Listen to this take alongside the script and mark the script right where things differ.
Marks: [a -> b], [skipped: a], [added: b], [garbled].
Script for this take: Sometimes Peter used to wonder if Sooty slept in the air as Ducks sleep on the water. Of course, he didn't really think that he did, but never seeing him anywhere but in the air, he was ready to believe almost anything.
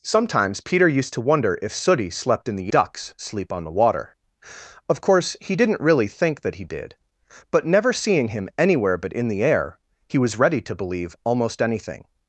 Sometimes Peter used to wonder if Sooty slept in the [skipped: air as] Ducks sleep on the water. Of course, he didn't really think that he did, but never seeing him anywhere but in the air, he was ready to believe almost anything.